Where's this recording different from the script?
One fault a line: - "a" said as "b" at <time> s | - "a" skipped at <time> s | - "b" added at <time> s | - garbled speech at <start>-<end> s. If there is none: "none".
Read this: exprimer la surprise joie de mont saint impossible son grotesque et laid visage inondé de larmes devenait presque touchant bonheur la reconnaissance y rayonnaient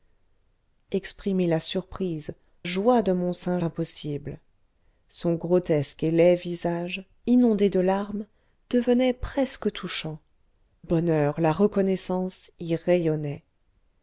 none